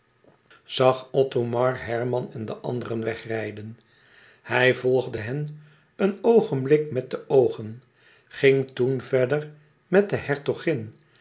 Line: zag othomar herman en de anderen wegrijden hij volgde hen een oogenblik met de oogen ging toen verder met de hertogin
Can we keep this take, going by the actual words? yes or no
yes